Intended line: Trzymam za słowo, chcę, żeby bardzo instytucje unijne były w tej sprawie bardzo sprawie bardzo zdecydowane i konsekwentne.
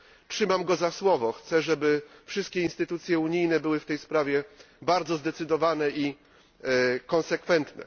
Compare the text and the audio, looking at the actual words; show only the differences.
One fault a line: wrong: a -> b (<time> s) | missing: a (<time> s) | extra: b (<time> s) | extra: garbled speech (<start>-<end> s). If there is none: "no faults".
extra: go (0.6 s)
wrong: bardzo -> wszystkie (2.2 s)
missing: sprawie bardzo (5.2 s)